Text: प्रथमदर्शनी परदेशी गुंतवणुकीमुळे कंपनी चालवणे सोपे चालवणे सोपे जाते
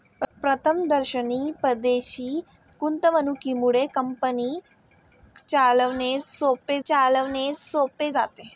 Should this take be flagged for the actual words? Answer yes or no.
no